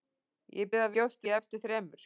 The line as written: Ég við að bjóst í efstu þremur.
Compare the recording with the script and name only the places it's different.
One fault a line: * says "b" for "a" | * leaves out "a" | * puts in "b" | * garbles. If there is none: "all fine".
all fine